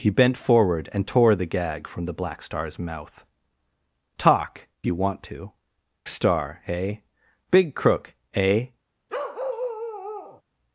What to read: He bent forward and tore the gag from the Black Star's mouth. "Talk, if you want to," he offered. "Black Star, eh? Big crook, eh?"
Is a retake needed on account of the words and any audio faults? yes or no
yes